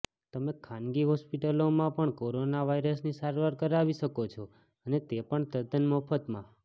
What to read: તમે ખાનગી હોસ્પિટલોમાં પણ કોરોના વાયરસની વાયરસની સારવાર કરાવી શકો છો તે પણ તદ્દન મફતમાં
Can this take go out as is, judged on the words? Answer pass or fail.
fail